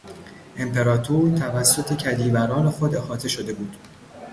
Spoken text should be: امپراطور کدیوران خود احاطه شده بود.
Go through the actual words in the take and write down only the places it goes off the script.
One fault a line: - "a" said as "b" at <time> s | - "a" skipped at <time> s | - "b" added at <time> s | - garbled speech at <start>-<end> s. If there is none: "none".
- "توسط" added at 1.4 s